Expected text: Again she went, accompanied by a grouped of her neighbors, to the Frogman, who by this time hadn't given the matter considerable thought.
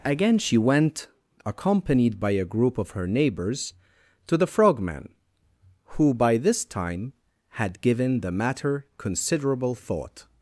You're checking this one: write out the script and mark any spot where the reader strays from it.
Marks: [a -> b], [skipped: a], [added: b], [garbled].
Again she went, accompanied by a [grouped -> group] of her neighbors, to the Frogman, who by this time [hadn't -> had] given the matter considerable thought.